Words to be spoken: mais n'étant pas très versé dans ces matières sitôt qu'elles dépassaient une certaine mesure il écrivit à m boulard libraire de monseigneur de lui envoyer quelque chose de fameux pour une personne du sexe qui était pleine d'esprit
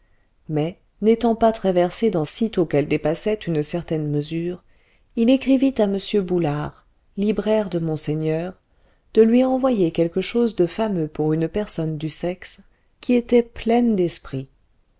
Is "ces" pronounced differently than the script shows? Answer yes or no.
yes